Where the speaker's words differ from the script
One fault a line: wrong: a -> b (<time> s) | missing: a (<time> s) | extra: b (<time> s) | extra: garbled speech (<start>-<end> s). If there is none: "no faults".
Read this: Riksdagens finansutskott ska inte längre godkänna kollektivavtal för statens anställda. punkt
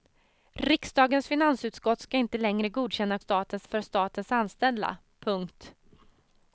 wrong: kollektivavtal -> statens (3.2 s)